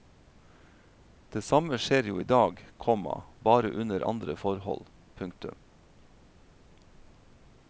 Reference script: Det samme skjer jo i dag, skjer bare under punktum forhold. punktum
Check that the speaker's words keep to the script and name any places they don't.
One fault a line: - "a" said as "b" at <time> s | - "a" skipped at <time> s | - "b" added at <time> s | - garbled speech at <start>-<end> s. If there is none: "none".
- "skjer" said as "komma" at 2.8 s
- "punktum" said as "andre" at 4.1 s